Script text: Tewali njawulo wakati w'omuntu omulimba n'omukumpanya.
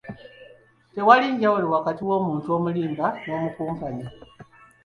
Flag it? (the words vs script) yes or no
no